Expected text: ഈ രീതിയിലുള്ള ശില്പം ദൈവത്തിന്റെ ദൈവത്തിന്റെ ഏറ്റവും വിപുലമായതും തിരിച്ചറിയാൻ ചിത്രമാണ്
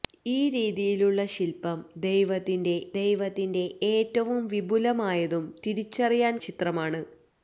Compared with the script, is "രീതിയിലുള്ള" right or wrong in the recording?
right